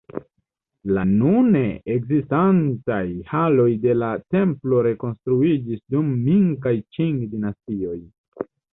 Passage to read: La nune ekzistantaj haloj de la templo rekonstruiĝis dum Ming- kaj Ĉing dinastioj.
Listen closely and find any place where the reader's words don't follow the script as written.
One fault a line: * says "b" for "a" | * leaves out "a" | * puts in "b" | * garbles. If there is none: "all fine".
all fine